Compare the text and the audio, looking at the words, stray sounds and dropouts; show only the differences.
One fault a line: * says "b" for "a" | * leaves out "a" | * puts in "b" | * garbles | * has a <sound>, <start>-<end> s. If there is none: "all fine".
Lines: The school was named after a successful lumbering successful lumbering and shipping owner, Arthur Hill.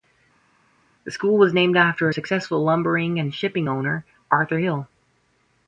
* leaves out "successful lumbering"